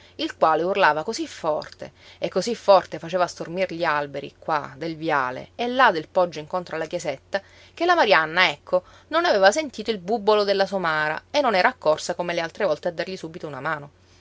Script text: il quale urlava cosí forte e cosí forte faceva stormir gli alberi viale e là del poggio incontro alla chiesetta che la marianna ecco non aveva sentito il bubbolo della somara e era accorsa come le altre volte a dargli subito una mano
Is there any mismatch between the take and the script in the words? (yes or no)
yes